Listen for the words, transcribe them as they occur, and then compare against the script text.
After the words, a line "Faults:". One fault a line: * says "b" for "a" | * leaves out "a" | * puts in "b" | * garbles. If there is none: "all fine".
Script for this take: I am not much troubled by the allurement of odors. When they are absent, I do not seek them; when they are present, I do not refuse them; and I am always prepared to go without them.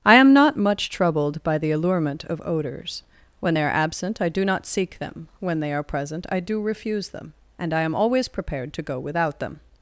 I am not much troubled by the allurement of odors. When they are absent, I do not seek them; when they are present, I do refuse them; and I am always prepared to go without them.
Faults:
* leaves out "not"